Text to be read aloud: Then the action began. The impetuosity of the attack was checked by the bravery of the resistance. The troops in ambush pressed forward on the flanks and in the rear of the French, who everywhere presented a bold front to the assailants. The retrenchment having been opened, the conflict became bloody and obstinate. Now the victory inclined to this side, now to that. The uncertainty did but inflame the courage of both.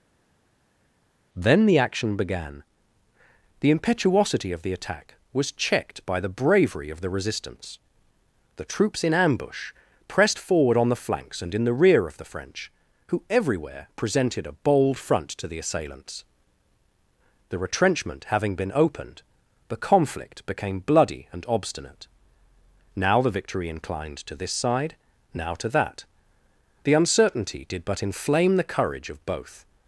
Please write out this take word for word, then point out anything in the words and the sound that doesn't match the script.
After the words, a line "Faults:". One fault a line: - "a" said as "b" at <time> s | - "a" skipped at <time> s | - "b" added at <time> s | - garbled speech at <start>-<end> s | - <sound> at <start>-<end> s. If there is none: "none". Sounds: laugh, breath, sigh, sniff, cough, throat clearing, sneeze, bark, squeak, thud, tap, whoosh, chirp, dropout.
Then the action began. The impetuosity of the attack was checked by the bravery of the resistance. The troops in ambush pressed forward on the flanks and in the rear of the French, who everywhere presented a bold front to the assailants. The retrenchment having been opened, the conflict became bloody and obstinate. Now the victory inclined to this side, now to that. The uncertainty did but inflame the courage of both.
Faults:
none